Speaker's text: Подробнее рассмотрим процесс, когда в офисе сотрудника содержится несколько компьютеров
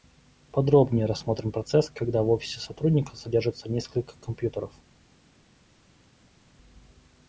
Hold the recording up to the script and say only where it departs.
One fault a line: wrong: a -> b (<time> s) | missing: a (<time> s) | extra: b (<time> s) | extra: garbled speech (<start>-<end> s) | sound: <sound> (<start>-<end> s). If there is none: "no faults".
no faults